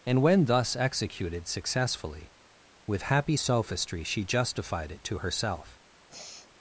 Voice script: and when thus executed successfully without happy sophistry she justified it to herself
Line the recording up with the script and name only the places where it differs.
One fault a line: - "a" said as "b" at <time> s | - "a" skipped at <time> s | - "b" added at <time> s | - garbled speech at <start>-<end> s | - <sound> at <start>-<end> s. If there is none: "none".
- "without" said as "with" at 2.9 s
- sigh at 6.1-6.5 s